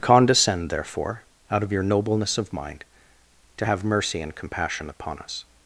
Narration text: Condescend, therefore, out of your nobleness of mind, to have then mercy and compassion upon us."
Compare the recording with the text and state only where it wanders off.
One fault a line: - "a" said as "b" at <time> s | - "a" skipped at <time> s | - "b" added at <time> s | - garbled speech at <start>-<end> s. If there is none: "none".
- "then" skipped at 3.8 s